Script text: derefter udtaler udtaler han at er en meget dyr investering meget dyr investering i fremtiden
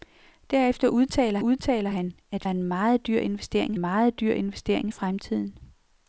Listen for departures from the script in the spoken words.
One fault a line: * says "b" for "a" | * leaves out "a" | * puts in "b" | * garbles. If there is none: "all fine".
all fine